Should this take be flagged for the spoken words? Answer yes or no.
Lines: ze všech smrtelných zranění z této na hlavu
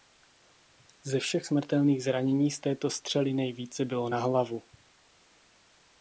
yes